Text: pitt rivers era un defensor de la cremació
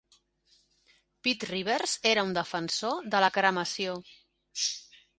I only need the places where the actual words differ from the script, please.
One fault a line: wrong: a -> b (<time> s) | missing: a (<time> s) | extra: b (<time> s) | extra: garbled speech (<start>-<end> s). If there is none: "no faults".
no faults